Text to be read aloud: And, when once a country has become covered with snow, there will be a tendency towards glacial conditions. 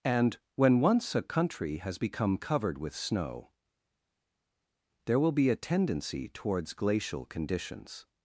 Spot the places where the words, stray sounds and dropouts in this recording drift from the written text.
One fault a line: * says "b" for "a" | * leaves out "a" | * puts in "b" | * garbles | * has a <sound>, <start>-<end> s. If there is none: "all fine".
all fine